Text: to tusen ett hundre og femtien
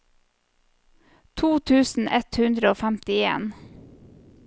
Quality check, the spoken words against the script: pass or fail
pass